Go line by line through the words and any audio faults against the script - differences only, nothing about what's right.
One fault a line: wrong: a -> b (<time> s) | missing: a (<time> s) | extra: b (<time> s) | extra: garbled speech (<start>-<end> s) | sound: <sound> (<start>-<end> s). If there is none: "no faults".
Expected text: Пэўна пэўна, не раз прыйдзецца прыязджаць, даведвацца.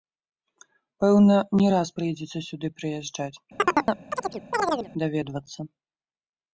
missing: пэўна (1.4 s)
extra: сюды (2.5 s)
sound: chirp (3.6-4.9 s)